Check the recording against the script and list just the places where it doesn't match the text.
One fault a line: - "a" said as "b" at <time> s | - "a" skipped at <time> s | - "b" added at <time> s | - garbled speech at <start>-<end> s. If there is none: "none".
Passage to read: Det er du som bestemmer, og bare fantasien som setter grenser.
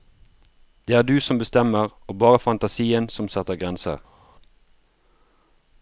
none